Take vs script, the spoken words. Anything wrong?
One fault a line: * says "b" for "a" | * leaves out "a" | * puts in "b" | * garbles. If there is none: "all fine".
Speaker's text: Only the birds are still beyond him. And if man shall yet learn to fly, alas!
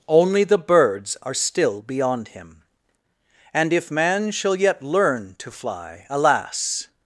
all fine